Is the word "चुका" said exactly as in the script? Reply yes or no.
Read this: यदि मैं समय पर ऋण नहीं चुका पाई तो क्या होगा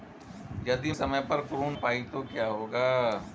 no